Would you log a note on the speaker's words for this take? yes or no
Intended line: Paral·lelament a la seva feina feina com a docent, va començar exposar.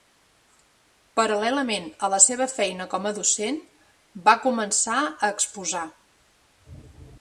yes